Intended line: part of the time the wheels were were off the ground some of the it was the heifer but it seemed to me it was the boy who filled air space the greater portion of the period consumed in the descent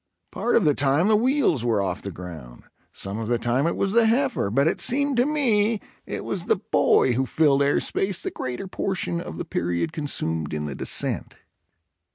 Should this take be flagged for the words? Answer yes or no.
yes